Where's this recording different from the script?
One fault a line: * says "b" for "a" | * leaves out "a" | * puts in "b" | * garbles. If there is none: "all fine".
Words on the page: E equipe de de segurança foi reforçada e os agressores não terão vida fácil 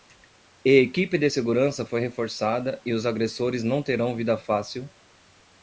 * leaves out "de"